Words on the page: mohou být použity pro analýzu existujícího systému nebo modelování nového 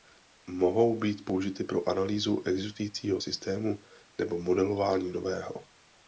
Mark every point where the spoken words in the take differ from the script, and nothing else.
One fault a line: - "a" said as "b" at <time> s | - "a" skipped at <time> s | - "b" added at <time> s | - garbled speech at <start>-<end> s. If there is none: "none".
none